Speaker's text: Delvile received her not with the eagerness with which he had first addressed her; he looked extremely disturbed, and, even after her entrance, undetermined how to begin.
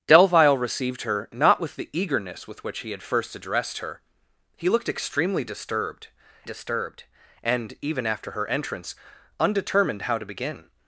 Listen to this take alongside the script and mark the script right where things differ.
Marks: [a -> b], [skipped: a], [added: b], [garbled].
Delvile received her not with the eagerness with which he had first addressed her; he looked extremely disturbed, [added: disturbed] and, even after her entrance, undetermined how to begin.